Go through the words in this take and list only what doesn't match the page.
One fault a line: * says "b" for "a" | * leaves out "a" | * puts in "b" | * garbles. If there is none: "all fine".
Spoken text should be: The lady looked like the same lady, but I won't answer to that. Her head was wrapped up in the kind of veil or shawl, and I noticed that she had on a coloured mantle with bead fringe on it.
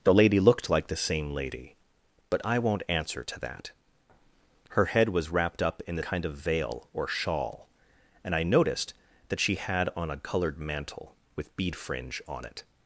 all fine